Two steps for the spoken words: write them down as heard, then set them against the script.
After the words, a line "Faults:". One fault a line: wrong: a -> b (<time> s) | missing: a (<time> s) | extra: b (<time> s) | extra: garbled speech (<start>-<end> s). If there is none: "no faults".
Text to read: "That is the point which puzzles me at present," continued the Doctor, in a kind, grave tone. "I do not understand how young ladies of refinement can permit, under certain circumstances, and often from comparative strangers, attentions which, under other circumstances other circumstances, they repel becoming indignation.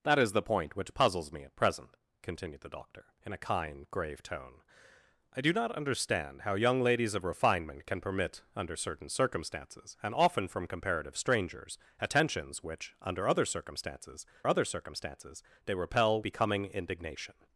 "That is the point which puzzles me at present," continued the Doctor, in a kind, grave tone. "I do not understand how young ladies of refinement can permit, under certain circumstances, and often from comparative strangers, attentions which, under other circumstances other circumstances, they repel becoming indignation.
Faults:
no faults